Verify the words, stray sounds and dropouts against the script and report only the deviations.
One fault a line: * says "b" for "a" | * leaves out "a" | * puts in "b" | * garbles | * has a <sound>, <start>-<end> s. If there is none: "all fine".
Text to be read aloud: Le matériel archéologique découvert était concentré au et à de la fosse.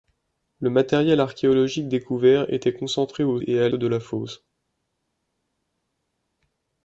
all fine